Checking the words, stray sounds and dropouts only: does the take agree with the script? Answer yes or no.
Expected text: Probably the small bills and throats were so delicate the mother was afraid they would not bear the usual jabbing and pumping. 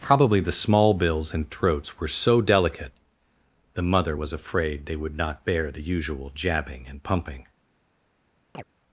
no